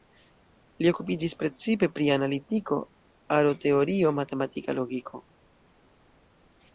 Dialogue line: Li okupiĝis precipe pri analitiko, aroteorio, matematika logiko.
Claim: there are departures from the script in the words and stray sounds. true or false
false